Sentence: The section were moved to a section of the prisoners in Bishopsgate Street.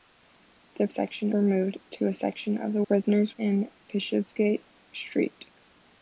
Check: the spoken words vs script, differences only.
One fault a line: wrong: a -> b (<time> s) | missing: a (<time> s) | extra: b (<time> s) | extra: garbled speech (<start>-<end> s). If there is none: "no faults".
no faults